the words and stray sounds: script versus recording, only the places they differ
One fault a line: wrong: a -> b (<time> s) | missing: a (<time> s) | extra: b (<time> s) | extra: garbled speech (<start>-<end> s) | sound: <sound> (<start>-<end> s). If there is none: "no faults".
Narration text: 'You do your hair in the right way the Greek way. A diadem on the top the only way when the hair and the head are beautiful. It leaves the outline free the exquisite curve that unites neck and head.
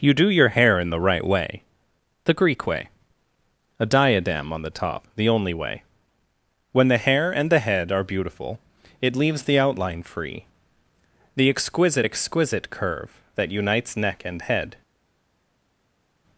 extra: exquisite (12.0 s)